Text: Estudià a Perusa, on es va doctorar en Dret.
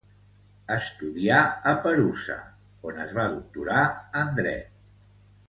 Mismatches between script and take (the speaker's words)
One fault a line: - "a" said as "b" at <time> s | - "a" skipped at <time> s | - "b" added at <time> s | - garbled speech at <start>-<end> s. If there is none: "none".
none